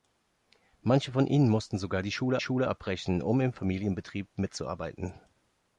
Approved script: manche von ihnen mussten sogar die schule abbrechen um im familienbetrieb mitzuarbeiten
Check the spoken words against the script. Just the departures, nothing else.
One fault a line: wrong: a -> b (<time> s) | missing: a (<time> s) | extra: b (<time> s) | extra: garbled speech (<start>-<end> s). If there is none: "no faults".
extra: schule (2.4 s)